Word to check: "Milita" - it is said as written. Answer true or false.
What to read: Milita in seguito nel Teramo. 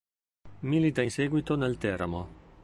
true